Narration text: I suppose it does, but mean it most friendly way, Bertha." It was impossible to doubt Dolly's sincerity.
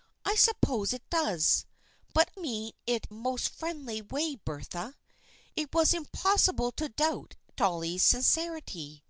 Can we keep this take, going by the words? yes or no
yes